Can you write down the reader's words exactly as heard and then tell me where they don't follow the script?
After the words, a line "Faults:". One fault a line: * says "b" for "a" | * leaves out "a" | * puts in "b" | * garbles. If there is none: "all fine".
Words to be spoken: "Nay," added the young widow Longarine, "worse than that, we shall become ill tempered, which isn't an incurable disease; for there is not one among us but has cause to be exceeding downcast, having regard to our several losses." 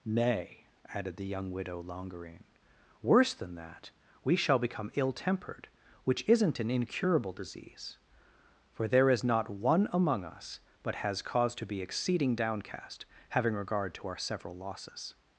"Nay," added the young widow Longarine, "worse than that, we shall become ill tempered, which isn't an incurable disease; for there is not one among us but has cause to be exceeding downcast, having regard to our several losses."
Faults:
all fine